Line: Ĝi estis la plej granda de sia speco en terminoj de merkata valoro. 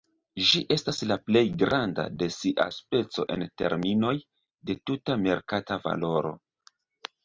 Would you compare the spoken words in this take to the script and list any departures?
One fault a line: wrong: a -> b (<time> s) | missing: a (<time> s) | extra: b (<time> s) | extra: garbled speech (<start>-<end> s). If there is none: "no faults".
wrong: estis -> estas (0.8 s)
extra: tuta (4.9 s)